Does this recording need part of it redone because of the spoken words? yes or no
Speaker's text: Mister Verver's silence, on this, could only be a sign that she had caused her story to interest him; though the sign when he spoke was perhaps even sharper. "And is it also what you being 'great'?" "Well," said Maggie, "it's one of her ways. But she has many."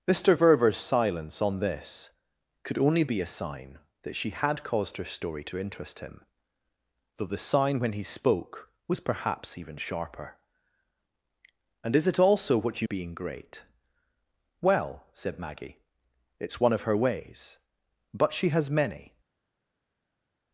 no